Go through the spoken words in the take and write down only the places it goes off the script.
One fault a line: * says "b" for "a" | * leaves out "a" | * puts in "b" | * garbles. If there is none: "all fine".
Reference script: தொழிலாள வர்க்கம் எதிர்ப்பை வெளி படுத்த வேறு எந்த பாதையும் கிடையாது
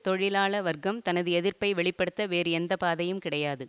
* puts in "தனது"